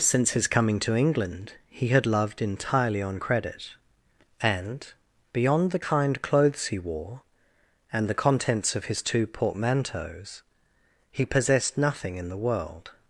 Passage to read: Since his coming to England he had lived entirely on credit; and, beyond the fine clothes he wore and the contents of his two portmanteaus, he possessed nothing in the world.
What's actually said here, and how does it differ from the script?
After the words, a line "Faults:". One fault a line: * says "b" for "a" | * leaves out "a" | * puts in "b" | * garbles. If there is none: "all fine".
Since his coming to England he had loved entirely on credit; and, beyond the kind clothes he wore and the contents of his two portmanteaus, he possessed nothing in the world.
Faults:
* says "loved" for "lived"
* says "kind" for "fine"